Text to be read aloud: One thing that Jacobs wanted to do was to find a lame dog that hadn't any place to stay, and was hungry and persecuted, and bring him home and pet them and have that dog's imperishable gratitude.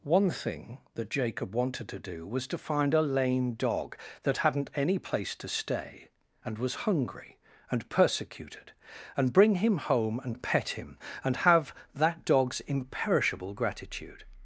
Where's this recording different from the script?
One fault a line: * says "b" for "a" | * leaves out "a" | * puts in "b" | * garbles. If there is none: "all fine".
* says "Jacob" for "Jacobs"
* says "him" for "them"